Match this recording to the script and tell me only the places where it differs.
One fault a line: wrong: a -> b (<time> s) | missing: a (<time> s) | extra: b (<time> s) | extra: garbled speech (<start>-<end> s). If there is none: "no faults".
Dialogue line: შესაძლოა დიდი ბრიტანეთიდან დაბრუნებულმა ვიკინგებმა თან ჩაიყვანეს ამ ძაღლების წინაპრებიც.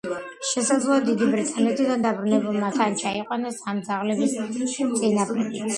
missing: ვიკინგებმა (2.7 s)